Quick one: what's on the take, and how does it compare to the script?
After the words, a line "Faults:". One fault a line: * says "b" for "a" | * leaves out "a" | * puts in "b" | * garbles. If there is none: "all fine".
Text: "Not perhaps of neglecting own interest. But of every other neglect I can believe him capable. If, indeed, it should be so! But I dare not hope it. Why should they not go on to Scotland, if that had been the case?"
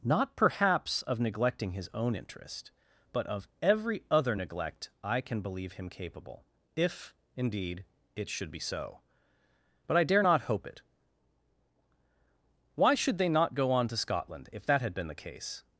"Not perhaps of neglecting his own interest. But of every other neglect I can believe him capable. If, indeed, it should be so! But I dare not hope it. Why should they not go on to Scotland, if that had been the case?"
Faults:
* puts in "his"